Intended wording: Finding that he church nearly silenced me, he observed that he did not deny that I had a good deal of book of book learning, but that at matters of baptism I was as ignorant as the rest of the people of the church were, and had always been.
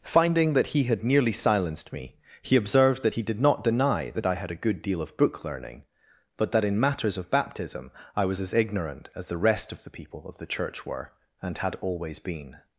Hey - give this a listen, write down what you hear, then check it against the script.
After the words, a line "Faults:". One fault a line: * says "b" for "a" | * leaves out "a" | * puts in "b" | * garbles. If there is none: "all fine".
Finding that he had nearly silenced me, he observed that he did not deny that I had a good deal of book learning, but that in matters of baptism I was as ignorant as the rest of the people of the church were, and had always been.
Faults:
* says "had" for "church"
* leaves out "of book"
* says "in" for "at"